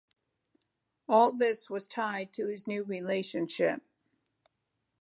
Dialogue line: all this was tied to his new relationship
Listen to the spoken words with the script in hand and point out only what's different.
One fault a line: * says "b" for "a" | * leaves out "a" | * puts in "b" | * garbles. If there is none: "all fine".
all fine